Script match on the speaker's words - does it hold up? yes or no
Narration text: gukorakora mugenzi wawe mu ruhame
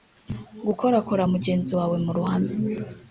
yes